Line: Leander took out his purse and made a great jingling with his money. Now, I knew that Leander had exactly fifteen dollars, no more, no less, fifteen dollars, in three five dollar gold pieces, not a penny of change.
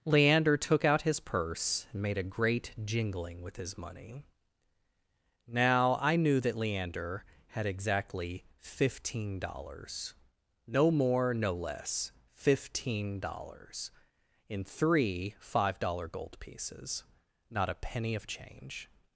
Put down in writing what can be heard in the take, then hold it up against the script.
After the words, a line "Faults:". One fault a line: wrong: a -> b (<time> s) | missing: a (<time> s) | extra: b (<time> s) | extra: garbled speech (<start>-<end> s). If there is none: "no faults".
Leander took out his purse and made a great jingling with his money. Now, I knew that Leander had exactly fifteen dollars, no more, no less, fifteen dollars, in three five dollar gold pieces, not a penny of change.
Faults:
no faults